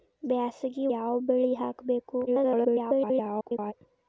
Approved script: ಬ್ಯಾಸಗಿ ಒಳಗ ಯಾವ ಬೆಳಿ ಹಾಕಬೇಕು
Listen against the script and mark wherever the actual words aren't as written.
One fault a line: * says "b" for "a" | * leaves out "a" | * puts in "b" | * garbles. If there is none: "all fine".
* leaves out "ಒಳಗ"
* garbles